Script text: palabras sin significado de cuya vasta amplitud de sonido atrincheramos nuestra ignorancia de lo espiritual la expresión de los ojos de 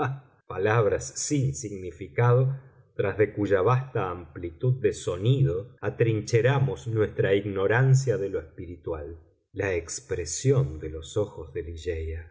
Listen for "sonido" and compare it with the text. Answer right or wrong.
right